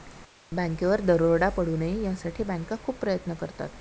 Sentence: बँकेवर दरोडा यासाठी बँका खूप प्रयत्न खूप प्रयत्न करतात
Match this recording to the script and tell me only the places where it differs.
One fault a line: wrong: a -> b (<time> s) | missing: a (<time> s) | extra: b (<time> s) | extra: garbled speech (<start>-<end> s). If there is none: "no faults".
extra: पडू नये (1.5 s)
missing: खूप प्रयत्न (3.3 s)